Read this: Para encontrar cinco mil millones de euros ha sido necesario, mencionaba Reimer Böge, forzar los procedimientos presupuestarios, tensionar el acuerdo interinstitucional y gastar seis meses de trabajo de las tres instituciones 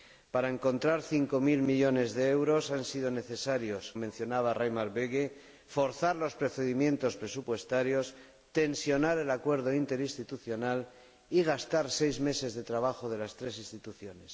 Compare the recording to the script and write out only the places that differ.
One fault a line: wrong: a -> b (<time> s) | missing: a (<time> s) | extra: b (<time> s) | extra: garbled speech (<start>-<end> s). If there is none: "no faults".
no faults